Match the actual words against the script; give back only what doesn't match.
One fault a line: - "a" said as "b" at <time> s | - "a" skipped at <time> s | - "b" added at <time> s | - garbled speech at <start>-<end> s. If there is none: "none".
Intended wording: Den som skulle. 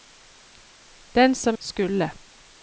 none